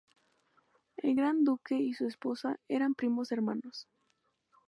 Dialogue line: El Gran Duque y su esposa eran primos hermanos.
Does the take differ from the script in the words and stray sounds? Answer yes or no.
no